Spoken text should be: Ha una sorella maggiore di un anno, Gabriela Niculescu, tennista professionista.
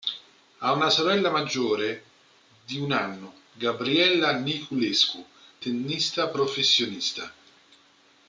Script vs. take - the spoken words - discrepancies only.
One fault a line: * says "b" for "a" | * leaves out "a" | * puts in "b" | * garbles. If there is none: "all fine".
all fine